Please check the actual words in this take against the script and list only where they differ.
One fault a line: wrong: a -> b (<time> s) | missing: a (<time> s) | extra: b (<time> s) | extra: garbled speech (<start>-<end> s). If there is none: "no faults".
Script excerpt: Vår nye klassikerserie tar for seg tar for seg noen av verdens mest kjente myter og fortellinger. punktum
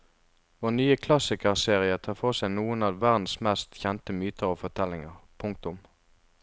missing: tar for seg (2.5 s)